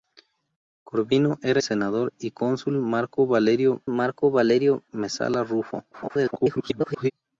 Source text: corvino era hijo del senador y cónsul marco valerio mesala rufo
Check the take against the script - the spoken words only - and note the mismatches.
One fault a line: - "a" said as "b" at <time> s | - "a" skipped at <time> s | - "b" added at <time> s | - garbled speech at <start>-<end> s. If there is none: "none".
- "hijo del" skipped at 1.6 s
- "marco valerio" added at 3.9 s
- garbled speech at 5.9-7.1 s